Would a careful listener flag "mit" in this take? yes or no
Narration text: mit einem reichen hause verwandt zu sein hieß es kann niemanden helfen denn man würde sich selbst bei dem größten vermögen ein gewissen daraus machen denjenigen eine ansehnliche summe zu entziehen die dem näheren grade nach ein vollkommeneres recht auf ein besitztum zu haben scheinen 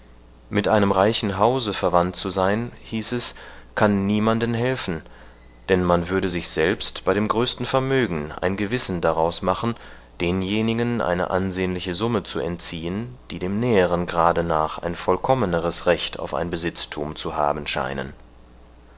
no